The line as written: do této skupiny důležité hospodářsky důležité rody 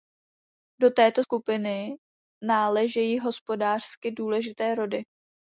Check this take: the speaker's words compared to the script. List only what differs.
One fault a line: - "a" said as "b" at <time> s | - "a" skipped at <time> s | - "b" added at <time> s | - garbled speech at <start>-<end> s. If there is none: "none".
- "důležité" said as "náležejí" at 2.4 s